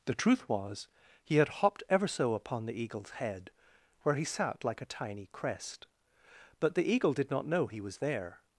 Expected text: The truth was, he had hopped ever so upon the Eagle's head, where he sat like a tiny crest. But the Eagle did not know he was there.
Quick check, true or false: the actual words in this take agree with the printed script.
true